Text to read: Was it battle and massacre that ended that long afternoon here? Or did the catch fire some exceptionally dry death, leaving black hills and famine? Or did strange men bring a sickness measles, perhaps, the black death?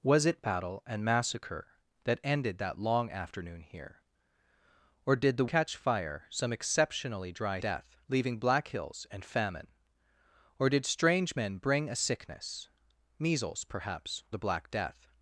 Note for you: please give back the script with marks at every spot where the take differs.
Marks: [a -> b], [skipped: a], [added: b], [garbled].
Was it battle and massacre that ended that long afternoon here? Or did the catch fire some exceptionally dry death, leaving black hills and famine? Or did strange men bring a sickness measles, perhaps, the black death?